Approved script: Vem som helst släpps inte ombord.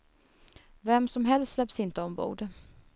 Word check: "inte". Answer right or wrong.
right